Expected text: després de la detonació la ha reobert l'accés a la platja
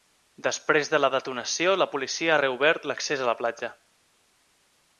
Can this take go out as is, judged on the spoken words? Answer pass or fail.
fail